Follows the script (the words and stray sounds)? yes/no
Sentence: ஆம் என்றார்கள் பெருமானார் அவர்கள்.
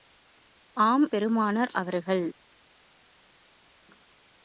no